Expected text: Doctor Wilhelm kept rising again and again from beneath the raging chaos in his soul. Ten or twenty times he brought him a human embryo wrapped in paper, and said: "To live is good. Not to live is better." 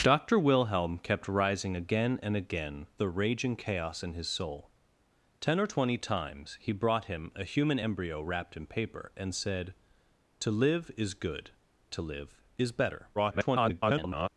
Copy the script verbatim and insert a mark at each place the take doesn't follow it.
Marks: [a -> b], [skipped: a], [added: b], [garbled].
Doctor Wilhelm kept rising again and again [skipped: from beneath] the raging chaos in his soul. Ten or twenty times he brought him a human embryo wrapped in paper, and said: "To live is good. [skipped: Not] to live is better." [garbled]